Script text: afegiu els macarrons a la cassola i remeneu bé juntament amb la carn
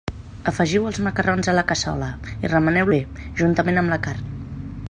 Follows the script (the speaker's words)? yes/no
yes